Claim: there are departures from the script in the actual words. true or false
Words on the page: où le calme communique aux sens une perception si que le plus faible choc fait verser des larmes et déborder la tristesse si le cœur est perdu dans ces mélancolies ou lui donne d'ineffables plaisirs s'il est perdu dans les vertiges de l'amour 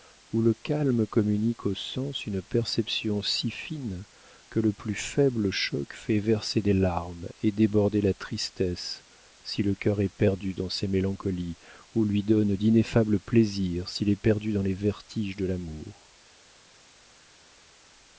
true